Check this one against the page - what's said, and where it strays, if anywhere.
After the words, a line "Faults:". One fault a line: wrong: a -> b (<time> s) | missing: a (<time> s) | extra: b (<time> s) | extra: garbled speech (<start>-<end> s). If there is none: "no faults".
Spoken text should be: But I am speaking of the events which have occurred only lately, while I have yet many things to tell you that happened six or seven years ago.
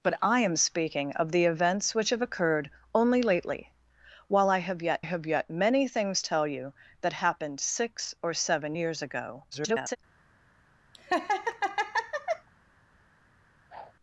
But I am speaking of the events which have occurred only lately, while I have yet have yet many things tell you that happened six or seven years ago. [garbled]
Faults:
extra: have yet (5.0 s)
missing: to (6.2 s)
extra: garbled speech (9.5-10.0 s)